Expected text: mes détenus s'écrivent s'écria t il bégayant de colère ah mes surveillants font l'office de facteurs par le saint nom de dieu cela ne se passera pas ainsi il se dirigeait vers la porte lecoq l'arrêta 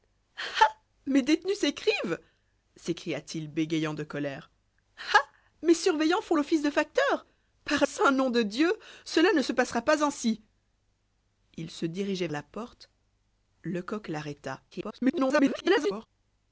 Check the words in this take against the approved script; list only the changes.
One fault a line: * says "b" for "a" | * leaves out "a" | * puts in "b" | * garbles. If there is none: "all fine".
* leaves out "le"
* leaves out "vers"
* garbles